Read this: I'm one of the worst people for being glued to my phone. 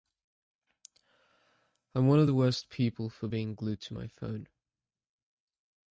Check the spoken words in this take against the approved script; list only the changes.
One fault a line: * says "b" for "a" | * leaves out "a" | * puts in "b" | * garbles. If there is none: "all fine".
all fine